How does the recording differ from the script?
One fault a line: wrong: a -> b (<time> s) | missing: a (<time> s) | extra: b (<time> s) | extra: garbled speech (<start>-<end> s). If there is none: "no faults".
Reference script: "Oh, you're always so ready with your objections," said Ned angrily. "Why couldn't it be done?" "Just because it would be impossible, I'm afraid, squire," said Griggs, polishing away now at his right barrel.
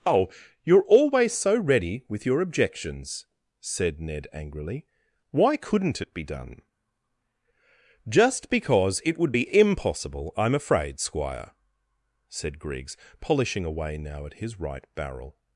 no faults